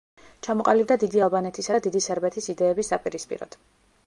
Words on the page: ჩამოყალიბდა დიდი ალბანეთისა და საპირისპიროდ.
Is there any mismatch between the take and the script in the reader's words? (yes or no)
yes